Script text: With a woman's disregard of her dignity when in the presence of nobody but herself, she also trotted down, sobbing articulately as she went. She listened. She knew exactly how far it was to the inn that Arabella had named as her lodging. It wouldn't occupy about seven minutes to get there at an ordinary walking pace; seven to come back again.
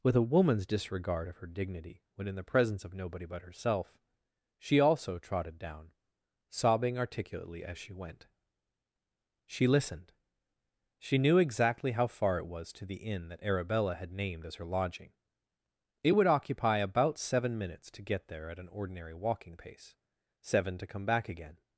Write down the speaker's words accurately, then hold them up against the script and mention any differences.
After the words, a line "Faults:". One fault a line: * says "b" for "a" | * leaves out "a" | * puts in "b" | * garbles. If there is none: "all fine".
With a woman's disregard of her dignity when in the presence of nobody but herself, she also trotted down, sobbing articulately as she went. She listened. She knew exactly how far it was to the inn that Arabella had named as her lodging. It would occupy about seven minutes to get there at an ordinary walking pace; seven to come back again.
Faults:
* says "would" for "wouldn't"